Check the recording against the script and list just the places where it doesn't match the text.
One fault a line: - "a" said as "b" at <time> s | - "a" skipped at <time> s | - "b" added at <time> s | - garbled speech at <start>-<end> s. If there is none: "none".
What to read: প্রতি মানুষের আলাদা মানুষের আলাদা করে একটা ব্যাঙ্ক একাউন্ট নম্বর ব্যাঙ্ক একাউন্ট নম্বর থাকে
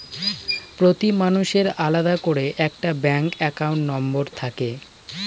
- "মানুষের আলাদা" skipped at 2.1 s
- "ব্যাঙ্ক একাউন্ট নম্বর" skipped at 4.2 s